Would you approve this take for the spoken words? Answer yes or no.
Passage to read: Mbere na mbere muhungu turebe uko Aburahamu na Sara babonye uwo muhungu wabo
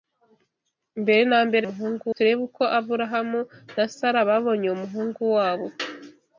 yes